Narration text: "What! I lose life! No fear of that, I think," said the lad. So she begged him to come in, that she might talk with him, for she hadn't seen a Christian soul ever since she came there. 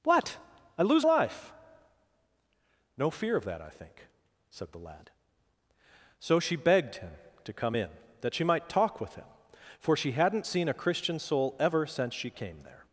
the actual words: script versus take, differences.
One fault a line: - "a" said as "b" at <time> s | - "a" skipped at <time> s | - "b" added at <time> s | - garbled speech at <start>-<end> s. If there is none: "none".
none